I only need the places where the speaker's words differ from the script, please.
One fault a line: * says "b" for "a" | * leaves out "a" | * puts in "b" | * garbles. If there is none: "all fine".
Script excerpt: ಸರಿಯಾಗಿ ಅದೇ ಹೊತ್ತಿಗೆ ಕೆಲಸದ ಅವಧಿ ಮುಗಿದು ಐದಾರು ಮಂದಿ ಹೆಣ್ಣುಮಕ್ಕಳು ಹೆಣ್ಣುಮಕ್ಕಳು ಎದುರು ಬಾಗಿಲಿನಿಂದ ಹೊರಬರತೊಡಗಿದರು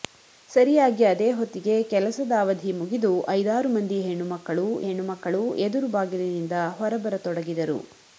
all fine